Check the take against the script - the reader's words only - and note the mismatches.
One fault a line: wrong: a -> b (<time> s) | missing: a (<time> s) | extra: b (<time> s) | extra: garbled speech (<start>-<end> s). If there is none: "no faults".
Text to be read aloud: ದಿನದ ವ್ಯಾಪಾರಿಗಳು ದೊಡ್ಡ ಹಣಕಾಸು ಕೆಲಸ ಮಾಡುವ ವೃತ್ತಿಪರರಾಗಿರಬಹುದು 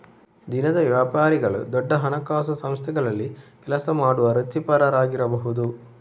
extra: ಸಂಸ್ಥೆಗಳಲ್ಲಿ (2.5 s)